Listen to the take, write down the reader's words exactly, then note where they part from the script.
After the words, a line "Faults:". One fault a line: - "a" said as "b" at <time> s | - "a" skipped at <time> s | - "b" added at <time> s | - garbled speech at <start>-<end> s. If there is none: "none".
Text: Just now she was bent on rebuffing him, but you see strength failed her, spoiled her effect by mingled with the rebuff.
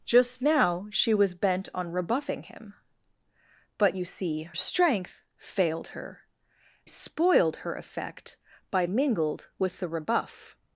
Just now she was bent on rebuffing him, but you see strength failed her, spoiled her effect by mingled with the rebuff.
Faults:
none